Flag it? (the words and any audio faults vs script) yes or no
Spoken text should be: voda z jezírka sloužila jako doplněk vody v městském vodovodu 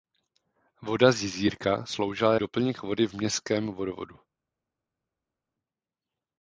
yes